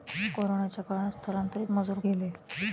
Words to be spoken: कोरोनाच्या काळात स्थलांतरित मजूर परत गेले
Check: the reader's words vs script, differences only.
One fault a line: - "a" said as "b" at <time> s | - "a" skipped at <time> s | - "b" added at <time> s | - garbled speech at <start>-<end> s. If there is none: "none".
- "परत" skipped at 2.0 s